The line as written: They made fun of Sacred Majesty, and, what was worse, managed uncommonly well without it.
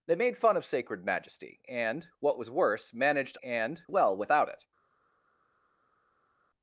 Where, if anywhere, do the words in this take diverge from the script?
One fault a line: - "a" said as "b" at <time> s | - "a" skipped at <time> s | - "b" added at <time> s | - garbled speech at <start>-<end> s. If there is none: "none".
- "uncommonly" said as "and" at 3.4 s